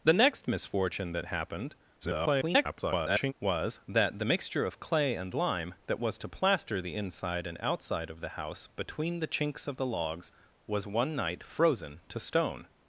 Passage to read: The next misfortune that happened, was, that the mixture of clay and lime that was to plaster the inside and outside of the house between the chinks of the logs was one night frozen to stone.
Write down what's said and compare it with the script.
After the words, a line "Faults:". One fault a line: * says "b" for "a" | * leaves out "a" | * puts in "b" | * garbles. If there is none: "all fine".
The next misfortune that happened, [garbled] was, that the mixture of clay and lime that was to plaster the inside and outside of the house between the chinks of the logs was one night frozen to stone.
Faults:
* garbles